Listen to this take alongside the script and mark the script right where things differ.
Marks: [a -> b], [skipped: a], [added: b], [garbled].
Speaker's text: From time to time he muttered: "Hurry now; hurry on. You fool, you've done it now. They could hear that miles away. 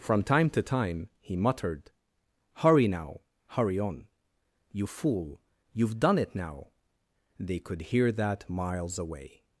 From time to time he muttered: "Hurry now; hurry on. You fool, you've done it now. They could hear that miles away.